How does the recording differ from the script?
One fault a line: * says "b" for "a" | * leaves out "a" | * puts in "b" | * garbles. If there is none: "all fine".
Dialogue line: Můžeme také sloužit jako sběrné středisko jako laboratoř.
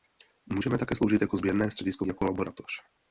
all fine